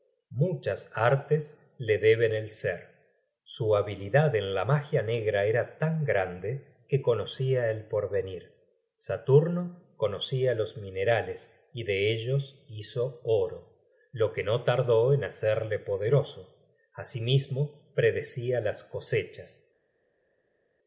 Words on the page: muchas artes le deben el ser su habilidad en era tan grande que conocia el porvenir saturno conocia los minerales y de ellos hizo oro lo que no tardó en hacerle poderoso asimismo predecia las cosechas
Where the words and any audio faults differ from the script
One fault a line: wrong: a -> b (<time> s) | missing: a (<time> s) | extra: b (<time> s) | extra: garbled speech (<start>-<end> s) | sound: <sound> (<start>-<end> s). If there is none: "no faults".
extra: la magia negra (4.5 s)